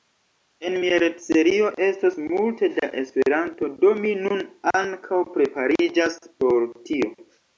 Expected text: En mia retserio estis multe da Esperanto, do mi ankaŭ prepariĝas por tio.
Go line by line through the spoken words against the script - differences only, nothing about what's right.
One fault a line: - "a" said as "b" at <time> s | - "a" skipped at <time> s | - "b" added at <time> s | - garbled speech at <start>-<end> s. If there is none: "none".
- "estis" said as "estos" at 1.9 s
- "nun" added at 4.2 s